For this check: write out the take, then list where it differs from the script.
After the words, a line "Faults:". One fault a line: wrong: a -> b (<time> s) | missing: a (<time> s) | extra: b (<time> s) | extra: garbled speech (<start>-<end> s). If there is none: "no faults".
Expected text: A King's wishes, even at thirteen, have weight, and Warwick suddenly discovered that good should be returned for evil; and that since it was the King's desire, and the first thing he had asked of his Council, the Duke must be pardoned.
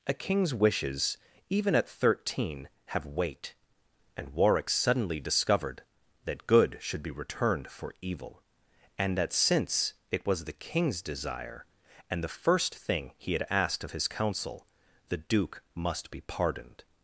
A King's wishes, even at thirteen, have weight, and Warwick suddenly discovered that good should be returned for evil; and that since it was the King's desire, and the first thing he had asked of his Council, the Duke must be pardoned.
Faults:
no faults